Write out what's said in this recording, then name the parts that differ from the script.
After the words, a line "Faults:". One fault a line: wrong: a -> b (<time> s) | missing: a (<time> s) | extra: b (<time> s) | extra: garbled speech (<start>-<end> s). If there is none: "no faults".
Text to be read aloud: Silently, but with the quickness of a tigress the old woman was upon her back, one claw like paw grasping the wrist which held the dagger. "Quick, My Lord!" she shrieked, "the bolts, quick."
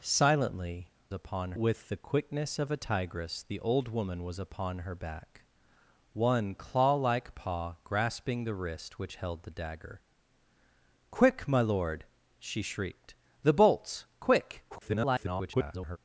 Silently, upon with the quickness of a tigress the old woman was upon her back, one claw like paw grasping the wrist which held the dagger. "Quick, My Lord!" she shrieked, "the bolts, quick." [garbled]
Faults:
wrong: but -> upon (1.1 s)
extra: garbled speech (14.7-16.0 s)